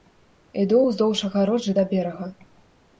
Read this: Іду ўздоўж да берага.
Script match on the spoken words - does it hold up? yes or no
no